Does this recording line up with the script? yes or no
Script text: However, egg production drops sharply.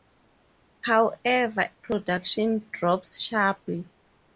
no